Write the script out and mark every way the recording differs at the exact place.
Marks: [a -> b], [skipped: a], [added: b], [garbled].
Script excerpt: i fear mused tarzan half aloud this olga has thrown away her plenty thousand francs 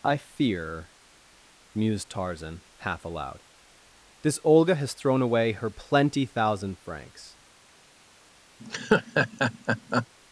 i fear mused tarzan half aloud this olga has thrown away her plenty thousand francs